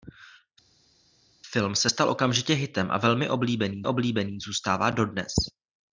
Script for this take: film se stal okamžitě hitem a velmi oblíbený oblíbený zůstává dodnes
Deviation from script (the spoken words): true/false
false